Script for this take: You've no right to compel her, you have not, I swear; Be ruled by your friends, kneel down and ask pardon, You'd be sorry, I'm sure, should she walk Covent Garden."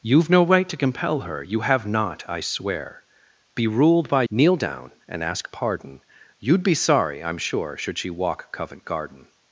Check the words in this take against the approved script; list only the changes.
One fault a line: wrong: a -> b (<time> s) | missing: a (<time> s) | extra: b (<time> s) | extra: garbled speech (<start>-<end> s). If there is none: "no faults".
missing: your friends (4.2 s)